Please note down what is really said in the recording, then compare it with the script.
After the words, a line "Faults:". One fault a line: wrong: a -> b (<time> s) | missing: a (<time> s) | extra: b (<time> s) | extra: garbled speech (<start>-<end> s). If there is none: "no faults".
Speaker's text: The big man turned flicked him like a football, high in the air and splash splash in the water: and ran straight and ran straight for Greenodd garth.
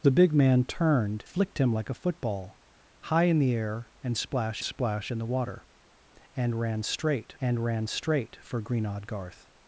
The big man turned flicked him like a football, high in the air and splash splash in the water: and ran straight and ran straight for Greenodd garth.
Faults:
no faults